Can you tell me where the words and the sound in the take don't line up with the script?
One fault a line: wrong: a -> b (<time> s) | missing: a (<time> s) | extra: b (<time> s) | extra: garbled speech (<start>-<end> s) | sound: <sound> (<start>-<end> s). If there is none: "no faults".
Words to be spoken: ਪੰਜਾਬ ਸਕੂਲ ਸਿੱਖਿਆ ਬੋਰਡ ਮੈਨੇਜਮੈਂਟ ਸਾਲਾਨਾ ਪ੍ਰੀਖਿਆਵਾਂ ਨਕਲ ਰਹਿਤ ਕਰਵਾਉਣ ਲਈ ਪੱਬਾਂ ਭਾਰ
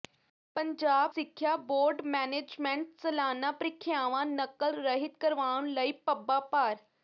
missing: ਸਕੂਲ (1.1 s)